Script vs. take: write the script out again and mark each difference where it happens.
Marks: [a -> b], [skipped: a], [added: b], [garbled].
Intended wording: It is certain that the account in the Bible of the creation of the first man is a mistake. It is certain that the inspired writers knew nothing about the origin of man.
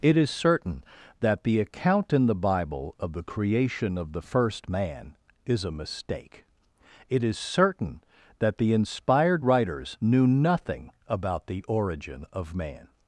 It is certain that the account in the Bible of the creation of the first man is a mistake. It is certain that the inspired writers knew nothing about the origin of man.